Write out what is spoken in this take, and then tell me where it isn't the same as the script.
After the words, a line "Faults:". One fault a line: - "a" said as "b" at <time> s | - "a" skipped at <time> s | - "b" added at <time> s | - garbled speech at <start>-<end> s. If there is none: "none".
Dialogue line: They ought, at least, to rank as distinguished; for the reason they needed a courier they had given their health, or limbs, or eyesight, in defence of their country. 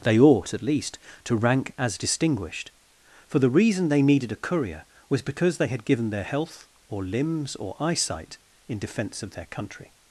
They ought, at least, to rank as distinguished; for the reason they needed a courier was because they had given their health, or limbs, or eyesight, in defence of their country.
Faults:
- "was because" added at 5.1 s